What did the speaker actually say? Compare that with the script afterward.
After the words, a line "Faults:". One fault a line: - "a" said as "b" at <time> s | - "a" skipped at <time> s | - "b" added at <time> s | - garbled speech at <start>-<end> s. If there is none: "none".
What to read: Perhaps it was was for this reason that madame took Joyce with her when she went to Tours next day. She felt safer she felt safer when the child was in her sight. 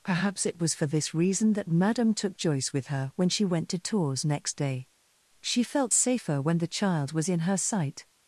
Perhaps it was for this reason that madame took Joyce with her when she went to Tours next day. She felt safer when the child was in her sight.
Faults:
- "was" skipped at 0.7 s
- "she felt safer" skipped at 6.4 s